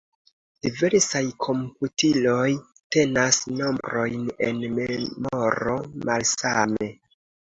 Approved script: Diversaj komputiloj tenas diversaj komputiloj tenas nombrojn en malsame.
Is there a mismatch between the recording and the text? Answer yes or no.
yes